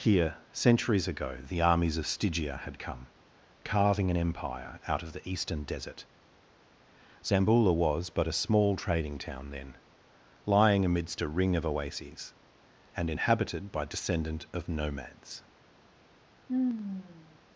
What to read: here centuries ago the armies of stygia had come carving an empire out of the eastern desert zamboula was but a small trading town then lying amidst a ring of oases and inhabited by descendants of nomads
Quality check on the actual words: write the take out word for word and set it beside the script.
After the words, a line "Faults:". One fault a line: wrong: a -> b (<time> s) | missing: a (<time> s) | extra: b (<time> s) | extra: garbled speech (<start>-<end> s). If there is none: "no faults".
here centuries ago the armies of stygia had come carving an empire out of the eastern desert zamboula was but a small trading town then lying amidst a ring of oases and inhabited by descendant of nomads
Faults:
wrong: descendants -> descendant (13.8 s)